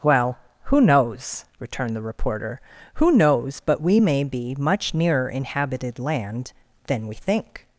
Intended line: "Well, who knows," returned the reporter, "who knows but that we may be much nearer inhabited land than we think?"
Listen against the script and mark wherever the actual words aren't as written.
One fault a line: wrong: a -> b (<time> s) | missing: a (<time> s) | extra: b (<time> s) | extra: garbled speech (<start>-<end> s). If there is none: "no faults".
missing: that (3.8 s)